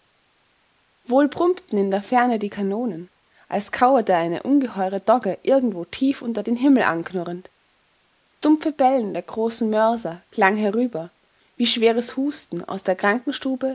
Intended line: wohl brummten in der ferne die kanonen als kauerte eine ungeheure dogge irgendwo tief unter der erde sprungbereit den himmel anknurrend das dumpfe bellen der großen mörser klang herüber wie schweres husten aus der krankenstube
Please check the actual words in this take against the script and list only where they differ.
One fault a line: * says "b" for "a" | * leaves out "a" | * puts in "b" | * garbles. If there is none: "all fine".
* leaves out "der erde sprungbereit"
* leaves out "das"